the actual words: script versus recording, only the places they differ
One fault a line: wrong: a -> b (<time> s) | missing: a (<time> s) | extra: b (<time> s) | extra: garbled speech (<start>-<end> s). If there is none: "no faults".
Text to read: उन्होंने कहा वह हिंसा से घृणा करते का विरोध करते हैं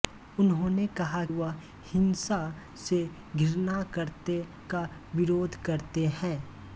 no faults